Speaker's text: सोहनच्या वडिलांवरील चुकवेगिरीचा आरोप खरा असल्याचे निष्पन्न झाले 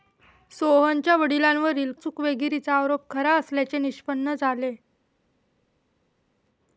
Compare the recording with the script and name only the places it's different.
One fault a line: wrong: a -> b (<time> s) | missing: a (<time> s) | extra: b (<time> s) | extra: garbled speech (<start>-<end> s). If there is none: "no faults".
no faults